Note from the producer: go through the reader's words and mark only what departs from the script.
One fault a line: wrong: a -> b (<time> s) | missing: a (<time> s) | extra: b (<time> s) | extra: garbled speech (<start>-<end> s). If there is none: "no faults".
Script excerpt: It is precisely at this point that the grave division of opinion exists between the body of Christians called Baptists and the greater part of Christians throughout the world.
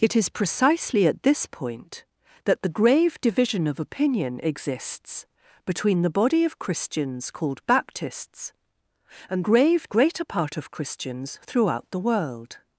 wrong: the -> grave (9.4 s)